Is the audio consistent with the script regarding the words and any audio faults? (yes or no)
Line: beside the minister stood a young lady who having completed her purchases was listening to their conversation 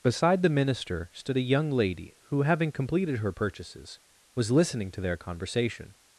yes